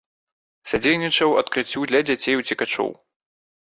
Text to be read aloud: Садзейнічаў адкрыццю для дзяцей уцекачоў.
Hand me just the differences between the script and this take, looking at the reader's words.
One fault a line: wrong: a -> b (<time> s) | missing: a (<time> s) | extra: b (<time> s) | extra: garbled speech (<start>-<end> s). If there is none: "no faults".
no faults